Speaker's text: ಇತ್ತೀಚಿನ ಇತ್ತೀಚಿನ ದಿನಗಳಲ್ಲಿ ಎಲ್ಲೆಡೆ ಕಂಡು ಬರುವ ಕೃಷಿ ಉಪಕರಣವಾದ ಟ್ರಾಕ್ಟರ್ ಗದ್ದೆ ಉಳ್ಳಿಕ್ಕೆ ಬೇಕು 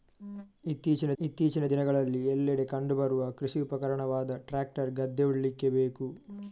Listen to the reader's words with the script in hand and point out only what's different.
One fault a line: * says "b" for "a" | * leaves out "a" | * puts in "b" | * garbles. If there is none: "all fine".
all fine